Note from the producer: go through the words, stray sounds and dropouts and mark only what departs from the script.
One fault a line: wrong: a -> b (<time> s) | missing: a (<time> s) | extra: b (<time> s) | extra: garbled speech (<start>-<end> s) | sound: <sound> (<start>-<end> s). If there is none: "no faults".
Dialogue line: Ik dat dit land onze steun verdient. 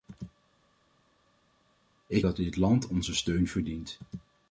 no faults